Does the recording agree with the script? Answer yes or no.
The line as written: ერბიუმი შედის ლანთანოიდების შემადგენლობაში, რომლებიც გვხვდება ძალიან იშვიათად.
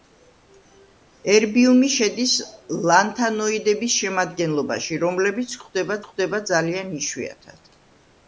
no